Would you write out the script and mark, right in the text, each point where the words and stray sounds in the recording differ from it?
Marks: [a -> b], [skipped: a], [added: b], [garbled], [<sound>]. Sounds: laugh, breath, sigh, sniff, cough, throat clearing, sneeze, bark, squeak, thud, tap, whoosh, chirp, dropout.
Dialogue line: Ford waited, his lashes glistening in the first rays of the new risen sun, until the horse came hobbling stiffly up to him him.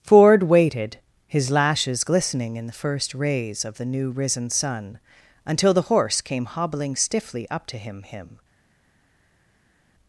Ford waited, his lashes glistening in the first rays of the new risen sun, until the horse came hobbling stiffly up to him him.